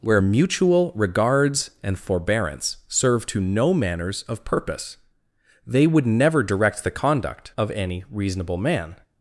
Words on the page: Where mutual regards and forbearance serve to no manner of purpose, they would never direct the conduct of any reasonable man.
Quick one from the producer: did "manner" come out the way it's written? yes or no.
no